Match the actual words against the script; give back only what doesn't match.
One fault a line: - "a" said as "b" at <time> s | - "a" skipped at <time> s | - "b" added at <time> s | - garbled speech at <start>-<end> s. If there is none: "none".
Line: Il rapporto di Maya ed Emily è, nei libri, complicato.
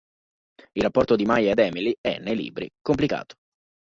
none